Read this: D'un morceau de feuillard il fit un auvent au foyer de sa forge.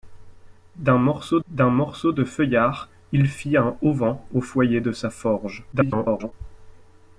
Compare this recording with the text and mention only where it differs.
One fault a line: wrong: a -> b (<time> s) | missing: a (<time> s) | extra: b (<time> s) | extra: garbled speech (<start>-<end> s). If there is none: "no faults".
extra: d'un morceau (1.5 s)
extra: garbled speech (5.7-6.3 s)